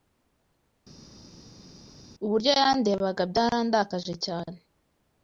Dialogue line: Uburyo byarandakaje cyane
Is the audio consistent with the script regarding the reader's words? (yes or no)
no